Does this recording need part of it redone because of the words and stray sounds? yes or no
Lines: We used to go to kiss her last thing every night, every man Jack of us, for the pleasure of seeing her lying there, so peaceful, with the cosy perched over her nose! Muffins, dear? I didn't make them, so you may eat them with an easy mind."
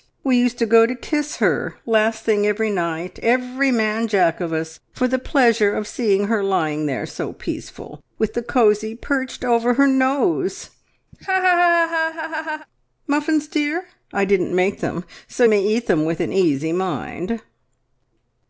yes